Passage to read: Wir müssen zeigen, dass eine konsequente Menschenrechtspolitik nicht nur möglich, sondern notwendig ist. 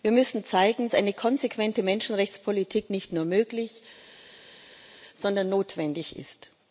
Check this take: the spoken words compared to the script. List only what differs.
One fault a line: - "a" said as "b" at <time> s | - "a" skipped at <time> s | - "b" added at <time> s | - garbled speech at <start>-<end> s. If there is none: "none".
- "dass" skipped at 0.9 s